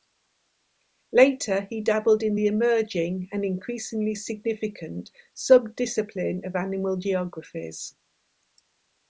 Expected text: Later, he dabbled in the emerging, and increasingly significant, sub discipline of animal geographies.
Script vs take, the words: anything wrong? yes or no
no